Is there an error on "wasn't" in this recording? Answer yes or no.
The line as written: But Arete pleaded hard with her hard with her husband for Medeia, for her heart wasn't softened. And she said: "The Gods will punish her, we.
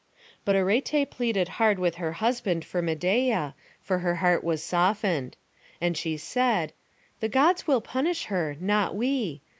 yes